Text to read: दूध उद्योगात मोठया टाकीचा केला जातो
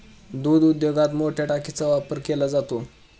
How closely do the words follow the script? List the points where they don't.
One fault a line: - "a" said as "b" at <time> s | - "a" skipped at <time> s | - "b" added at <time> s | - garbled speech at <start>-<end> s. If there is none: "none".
- "वापर" added at 1.9 s